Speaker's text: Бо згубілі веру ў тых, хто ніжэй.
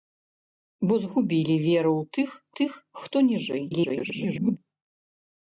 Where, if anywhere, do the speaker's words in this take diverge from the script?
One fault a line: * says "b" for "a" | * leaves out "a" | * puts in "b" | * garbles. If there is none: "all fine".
* puts in "тых"
* garbles